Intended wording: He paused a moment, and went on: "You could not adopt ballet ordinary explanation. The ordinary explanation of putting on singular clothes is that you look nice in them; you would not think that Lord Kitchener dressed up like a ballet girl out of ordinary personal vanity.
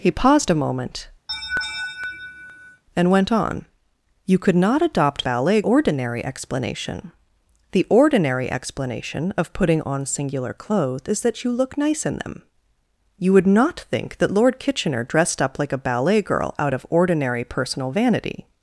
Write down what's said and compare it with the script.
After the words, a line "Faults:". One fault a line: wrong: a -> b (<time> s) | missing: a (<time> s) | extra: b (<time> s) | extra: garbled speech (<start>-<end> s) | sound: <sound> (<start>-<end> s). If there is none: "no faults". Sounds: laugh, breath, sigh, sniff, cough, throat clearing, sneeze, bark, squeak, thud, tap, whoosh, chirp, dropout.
He paused a moment, and went on: "You could not adopt ballet ordinary explanation. The ordinary explanation of putting on singular clothes is that you look nice in them; you would not think that Lord Kitchener dressed up like a ballet girl out of ordinary personal vanity.
Faults:
sound: laugh (1.3-2.8 s)